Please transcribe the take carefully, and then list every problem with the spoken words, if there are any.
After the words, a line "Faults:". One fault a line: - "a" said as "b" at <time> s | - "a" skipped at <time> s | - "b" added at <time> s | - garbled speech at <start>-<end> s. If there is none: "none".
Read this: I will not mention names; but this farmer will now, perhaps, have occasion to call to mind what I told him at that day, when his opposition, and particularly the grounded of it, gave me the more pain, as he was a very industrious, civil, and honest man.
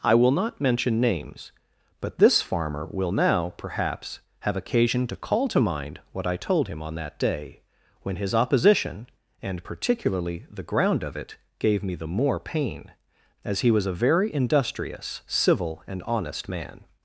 I will not mention names; but this farmer will now, perhaps, have occasion to call to mind what I told him on that day, when his opposition, and particularly the ground of it, gave me the more pain, as he was a very industrious, civil, and honest man.
Faults:
- "at" said as "on" at 6.8 s
- "grounded" said as "ground" at 10.6 s